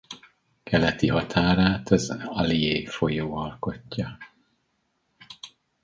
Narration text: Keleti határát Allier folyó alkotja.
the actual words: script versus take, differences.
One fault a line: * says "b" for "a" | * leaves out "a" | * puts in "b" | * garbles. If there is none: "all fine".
* puts in "az"